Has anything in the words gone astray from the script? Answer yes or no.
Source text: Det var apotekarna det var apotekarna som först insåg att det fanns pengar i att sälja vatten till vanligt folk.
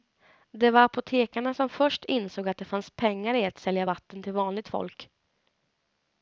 yes